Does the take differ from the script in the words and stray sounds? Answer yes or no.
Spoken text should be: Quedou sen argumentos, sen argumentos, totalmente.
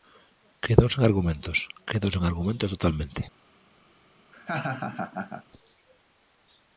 yes